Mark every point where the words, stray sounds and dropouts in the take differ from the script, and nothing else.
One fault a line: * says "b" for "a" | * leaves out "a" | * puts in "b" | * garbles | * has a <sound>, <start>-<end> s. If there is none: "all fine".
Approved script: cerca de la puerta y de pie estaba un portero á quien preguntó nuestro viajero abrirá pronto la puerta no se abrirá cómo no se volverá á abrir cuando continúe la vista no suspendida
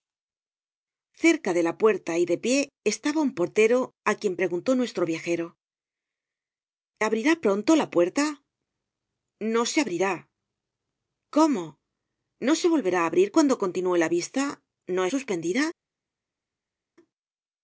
all fine